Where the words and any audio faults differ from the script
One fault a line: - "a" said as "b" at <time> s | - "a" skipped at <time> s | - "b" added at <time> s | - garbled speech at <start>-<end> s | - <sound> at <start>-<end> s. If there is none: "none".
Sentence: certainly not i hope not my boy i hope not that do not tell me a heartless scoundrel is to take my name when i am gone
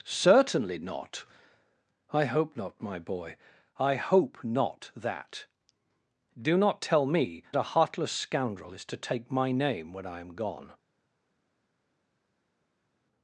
none